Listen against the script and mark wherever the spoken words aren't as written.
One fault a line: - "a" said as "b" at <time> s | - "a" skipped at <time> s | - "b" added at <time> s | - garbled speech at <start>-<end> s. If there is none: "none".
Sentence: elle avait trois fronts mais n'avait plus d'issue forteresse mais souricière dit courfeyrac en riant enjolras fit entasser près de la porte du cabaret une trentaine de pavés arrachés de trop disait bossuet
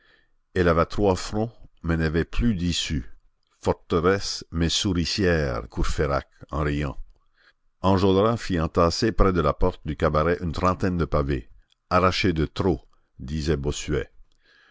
- "dit" skipped at 5.6 s